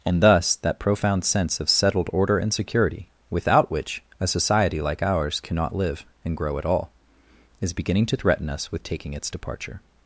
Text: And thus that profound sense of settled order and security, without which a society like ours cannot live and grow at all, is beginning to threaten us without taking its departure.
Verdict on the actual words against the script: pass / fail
fail